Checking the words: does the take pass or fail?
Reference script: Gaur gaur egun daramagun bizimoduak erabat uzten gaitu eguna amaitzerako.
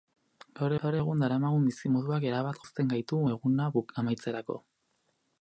pass